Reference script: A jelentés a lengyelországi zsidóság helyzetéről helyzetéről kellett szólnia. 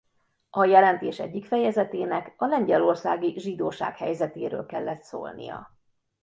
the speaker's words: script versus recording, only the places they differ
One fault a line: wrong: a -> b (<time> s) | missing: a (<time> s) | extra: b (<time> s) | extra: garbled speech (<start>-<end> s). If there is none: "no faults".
extra: egyik fejezetének (1.2 s)
missing: helyzetéről (4.7 s)